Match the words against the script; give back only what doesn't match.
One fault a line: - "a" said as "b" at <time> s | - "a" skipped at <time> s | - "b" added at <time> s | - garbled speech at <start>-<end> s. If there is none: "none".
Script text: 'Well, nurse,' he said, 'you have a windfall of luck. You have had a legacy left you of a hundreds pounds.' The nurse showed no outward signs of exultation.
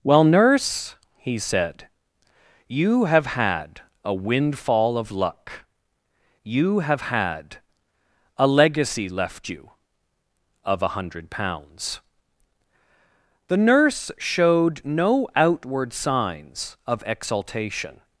- "had" added at 3.3 s
- "hundreds" said as "hundred" at 10.9 s